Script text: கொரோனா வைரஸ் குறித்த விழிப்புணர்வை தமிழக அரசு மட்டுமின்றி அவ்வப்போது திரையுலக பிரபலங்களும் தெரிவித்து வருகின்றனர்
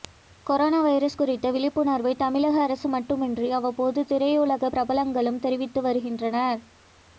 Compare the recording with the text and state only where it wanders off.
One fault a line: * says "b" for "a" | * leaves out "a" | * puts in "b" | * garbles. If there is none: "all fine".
all fine